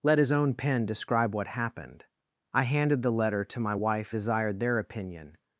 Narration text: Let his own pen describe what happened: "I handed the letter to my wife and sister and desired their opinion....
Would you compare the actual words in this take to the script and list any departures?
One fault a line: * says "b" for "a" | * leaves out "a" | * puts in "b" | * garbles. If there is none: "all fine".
* leaves out "and sister and"